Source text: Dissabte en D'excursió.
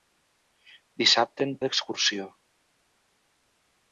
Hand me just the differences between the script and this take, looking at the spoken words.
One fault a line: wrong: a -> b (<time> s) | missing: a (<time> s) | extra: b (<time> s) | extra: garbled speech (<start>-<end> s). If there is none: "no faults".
no faults